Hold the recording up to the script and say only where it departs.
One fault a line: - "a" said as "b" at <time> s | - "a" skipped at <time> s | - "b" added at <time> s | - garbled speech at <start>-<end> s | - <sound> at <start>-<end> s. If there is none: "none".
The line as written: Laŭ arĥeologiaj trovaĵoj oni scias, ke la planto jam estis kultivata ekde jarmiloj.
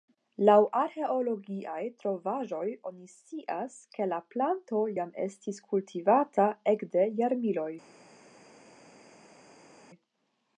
none